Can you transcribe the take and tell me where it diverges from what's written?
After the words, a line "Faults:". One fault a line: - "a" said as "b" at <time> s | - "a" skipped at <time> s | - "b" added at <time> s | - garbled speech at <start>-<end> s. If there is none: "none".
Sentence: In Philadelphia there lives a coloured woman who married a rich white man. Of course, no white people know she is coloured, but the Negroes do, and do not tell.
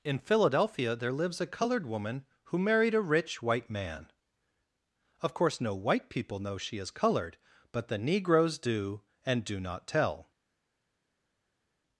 In Philadelphia there lives a coloured woman who married a rich white man. Of course, no white people know she is coloured, but the Negroes do, and do not tell.
Faults:
none